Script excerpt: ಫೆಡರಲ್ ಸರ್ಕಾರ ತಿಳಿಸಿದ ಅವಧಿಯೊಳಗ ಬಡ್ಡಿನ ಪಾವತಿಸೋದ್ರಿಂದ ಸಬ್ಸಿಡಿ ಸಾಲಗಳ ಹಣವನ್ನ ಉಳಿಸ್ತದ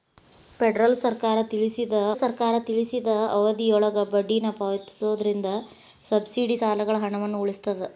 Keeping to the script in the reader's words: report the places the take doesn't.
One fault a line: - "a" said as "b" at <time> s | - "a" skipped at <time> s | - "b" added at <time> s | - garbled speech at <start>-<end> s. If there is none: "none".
- "ಸರ್ಕಾರ ತಿಳಿಸಿದ" added at 2.1 s